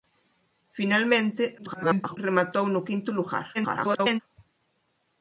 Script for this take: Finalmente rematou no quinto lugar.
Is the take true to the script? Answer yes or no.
no